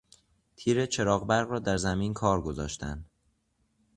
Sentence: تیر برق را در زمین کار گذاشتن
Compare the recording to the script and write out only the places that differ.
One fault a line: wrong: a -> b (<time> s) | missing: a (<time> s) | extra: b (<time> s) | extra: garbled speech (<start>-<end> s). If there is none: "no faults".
extra: چراغ (0.8 s)